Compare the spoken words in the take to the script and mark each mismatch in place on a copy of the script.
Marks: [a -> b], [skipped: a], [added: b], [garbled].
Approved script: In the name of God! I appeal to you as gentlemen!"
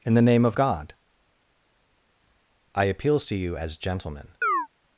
In the name of God! I [appeal -> appeals] to you as gentlemen!"